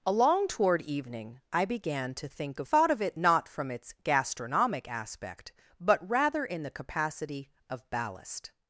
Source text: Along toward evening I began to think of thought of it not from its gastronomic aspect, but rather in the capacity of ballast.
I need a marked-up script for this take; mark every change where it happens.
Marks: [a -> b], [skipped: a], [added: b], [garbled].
Along toward evening I began to think of thought of it not from its gastronomic aspect, but rather in the capacity of ballast.